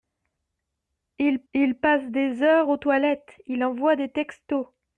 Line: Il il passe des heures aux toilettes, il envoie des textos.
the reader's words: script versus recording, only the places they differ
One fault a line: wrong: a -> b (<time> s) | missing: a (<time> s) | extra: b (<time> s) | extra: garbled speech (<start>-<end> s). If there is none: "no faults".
no faults